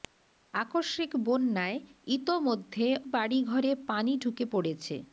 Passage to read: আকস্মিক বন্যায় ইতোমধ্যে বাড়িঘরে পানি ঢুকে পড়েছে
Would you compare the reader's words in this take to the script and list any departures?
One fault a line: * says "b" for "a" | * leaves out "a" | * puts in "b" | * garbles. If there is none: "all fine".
all fine